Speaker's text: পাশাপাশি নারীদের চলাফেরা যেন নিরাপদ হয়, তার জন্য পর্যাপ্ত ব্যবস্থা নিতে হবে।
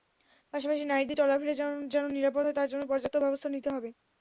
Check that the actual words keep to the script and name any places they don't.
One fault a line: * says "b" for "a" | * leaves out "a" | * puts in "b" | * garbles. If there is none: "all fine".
all fine